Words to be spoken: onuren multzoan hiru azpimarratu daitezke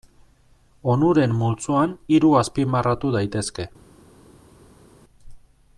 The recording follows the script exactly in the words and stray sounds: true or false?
true